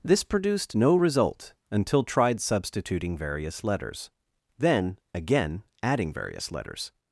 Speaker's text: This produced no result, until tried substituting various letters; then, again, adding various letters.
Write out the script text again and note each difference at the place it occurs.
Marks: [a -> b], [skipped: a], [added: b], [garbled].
This produced no result, until tried substituting various letters; then, again, adding various letters.